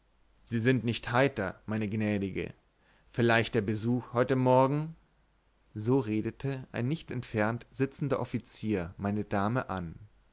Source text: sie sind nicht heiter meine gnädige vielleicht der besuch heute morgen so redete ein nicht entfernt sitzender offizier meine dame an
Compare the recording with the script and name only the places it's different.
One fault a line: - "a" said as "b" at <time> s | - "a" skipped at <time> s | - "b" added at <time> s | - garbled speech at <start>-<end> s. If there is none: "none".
none